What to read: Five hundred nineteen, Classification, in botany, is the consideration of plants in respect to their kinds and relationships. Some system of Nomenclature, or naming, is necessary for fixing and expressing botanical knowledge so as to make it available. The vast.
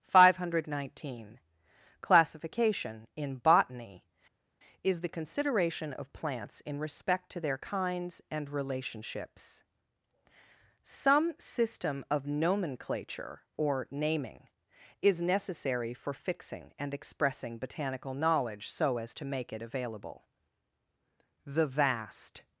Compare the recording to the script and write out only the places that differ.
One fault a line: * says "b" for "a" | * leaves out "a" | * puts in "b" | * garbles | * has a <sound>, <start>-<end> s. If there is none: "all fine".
all fine